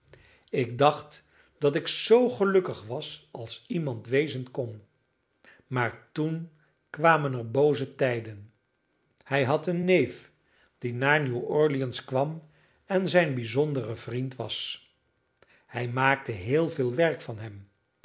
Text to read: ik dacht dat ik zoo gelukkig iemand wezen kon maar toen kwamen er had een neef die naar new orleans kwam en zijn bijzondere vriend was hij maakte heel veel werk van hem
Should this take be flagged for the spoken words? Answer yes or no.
yes